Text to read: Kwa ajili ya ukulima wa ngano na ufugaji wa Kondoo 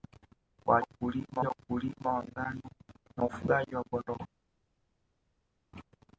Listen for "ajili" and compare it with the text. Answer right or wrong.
wrong